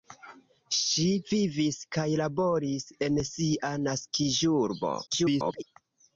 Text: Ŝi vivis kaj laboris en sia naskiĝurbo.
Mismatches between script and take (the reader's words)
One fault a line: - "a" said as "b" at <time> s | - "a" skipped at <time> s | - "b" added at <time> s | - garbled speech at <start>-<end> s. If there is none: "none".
- garbled speech at 5.1-5.6 s